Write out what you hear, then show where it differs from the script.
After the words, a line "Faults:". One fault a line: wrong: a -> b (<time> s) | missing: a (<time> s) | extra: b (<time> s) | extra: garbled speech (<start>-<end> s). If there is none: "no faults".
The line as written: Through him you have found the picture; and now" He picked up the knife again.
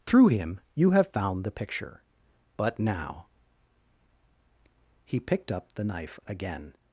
Through him you have found the picture; but now" He picked up the knife again.
Faults:
wrong: and -> but (2.6 s)